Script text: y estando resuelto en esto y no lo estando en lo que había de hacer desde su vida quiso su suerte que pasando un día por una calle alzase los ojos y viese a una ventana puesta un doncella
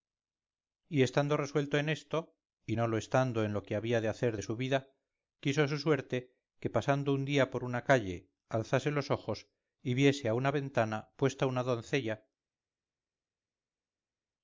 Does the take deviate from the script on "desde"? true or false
true